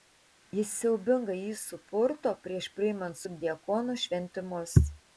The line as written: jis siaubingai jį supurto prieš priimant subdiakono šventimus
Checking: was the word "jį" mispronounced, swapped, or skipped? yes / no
no